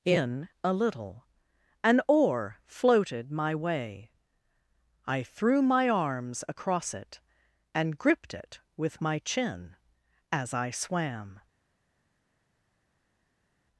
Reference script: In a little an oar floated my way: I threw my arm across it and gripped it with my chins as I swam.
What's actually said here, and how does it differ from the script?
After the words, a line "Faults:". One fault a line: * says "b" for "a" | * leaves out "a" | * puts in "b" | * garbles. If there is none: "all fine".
In a little an oar floated my way: I threw my arms across it and gripped it with my chin as I swam.
Faults:
* says "arms" for "arm"
* says "chin" for "chins"